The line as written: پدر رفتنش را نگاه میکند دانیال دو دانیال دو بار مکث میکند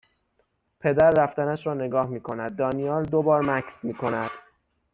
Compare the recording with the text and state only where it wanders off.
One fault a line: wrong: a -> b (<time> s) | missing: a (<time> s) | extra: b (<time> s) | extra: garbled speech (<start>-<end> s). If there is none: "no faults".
missing: دانیال دو (3.2 s)